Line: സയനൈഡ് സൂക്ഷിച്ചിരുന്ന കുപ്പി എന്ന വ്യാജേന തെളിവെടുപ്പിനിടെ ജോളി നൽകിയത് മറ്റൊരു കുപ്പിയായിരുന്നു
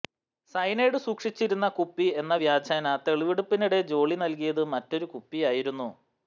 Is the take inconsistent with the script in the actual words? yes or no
no